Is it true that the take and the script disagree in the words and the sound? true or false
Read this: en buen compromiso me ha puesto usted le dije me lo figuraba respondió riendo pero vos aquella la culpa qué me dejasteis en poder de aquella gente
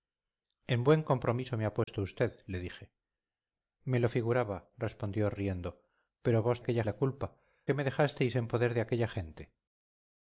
true